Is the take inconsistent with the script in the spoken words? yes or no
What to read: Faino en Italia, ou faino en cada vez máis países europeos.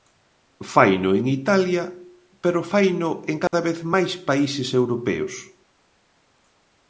yes